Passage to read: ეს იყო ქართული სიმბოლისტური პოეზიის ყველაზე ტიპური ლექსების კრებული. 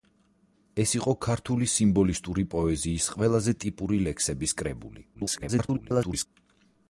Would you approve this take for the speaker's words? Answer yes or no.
no